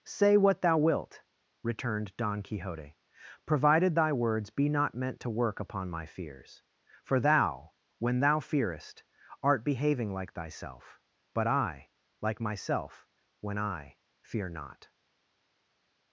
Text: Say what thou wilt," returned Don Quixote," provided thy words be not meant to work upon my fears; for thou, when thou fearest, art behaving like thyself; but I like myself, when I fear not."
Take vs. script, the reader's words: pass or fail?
pass